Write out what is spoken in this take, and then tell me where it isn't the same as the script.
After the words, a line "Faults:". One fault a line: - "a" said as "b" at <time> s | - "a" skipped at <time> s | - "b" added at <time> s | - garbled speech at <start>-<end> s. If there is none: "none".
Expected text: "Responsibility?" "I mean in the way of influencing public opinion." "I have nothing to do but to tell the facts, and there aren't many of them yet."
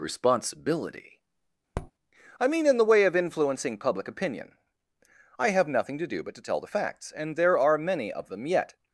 "Responsibility?" "I mean in the way of influencing public opinion." "I have nothing to do but to tell the facts, and there are many of them yet."
Faults:
- "aren't" said as "are" at 7.6 s